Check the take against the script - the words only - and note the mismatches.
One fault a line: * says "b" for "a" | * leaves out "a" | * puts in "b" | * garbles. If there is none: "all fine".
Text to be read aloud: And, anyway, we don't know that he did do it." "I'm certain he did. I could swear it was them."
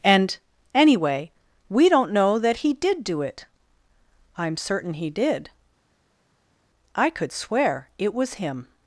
* says "him" for "them"